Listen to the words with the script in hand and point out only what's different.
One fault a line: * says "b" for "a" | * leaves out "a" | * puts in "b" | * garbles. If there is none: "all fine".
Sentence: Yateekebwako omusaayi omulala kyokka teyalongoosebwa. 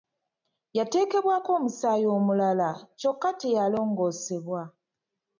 all fine